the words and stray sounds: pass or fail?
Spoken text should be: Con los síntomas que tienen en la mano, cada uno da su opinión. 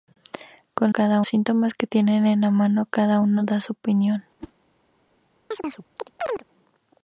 fail